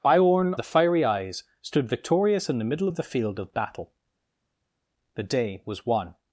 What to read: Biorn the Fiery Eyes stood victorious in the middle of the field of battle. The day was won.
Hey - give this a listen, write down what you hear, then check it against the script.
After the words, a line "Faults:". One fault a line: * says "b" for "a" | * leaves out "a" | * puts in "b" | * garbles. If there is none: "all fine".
Biorn the Fiery Eyes stood victorious in the middle of the field of battle. The day was won.
Faults:
all fine